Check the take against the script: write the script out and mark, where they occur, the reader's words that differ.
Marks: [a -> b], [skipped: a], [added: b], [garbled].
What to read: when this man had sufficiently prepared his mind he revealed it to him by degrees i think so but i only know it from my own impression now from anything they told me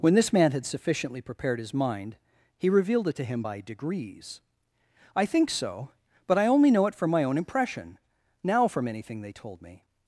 when this man had sufficiently prepared his mind he revealed it to him by degrees i think so but i only know it from my own impression now from anything they told me